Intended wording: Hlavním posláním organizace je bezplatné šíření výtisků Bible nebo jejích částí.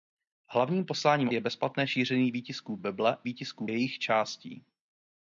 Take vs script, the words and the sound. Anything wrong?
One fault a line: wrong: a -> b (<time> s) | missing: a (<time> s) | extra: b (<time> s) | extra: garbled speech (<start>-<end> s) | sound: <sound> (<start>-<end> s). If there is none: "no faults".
missing: organizace (1.3 s)
wrong: nebo -> výtisků (3.2 s)